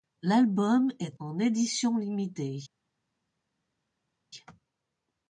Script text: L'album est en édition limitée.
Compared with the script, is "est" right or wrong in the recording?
right